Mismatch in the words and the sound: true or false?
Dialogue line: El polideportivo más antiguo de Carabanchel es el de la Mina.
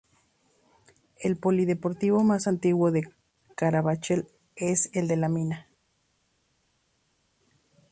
false